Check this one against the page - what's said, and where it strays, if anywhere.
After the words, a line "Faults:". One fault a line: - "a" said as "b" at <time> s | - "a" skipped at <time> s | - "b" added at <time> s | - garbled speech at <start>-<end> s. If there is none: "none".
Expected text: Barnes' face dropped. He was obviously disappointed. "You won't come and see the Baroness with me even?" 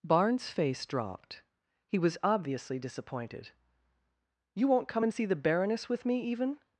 Barnes' face dropped. He was obviously disappointed. "You won't come and see the Baroness with me even?"
Faults:
none